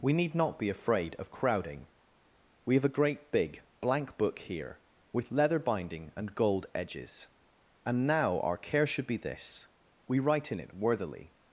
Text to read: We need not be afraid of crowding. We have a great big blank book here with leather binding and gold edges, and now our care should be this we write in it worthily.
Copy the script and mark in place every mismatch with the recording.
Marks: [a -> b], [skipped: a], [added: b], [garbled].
We need not be afraid of crowding. We have a great big blank book here with leather binding and gold edges, and now our care should be this we write in it worthily.